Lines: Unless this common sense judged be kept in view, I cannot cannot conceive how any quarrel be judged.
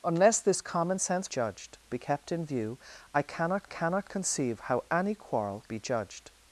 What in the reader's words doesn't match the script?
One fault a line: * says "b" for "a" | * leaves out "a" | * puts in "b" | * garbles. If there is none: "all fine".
all fine